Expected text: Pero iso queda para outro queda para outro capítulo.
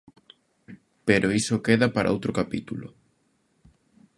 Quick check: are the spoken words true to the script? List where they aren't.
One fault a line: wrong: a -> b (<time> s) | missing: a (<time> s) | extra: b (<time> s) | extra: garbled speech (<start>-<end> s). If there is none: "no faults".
missing: queda para outro (2.3 s)